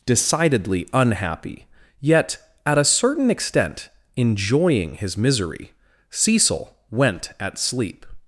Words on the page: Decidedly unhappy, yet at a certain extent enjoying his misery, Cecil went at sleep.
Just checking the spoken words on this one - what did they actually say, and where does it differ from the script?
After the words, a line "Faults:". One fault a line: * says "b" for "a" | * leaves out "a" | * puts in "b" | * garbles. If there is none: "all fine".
Decidedly unhappy, yet at a certain extent enjoying his misery, Cecil went at sleep.
Faults:
all fine